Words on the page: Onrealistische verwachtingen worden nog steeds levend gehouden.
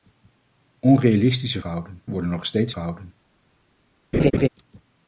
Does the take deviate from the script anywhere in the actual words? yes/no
yes